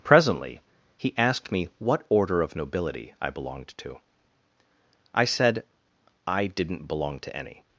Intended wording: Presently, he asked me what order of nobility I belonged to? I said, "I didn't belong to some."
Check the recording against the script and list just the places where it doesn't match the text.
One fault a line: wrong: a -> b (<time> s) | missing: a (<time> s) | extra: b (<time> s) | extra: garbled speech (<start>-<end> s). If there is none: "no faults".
wrong: some -> any (7.4 s)